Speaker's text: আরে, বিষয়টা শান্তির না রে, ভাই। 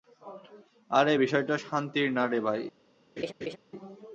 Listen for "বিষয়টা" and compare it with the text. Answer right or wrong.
right